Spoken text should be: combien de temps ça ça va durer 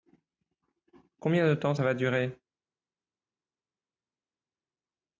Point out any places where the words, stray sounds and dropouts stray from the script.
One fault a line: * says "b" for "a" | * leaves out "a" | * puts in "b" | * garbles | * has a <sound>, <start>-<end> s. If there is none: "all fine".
* leaves out "ça"